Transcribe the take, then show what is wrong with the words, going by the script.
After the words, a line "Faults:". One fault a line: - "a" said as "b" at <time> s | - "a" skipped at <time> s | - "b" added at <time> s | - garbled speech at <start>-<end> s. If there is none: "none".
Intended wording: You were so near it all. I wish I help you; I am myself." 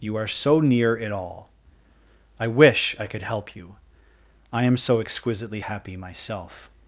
You are so near it all. I wish I could help you; I am so exquisitely happy myself."
Faults:
- "were" said as "are" at 0.1 s
- "could" added at 3.0 s
- "so exquisitely happy" added at 4.8 s